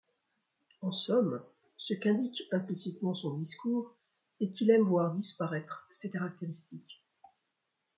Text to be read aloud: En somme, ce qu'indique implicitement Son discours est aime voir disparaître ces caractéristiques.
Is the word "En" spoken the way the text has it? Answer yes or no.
yes